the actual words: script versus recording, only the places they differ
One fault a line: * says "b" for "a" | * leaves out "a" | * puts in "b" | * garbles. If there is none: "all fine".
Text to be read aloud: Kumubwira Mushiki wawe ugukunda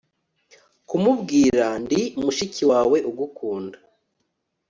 * puts in "Ndi"